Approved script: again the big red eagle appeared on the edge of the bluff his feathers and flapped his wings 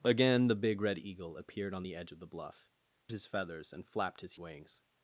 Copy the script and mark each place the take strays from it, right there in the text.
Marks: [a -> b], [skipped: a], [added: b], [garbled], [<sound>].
again the big red eagle appeared on the edge of the bluff his feathers and flapped his wings